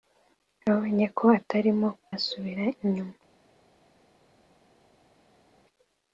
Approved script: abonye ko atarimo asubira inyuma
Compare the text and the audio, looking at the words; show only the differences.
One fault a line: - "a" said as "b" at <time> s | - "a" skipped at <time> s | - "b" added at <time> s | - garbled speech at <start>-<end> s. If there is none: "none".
none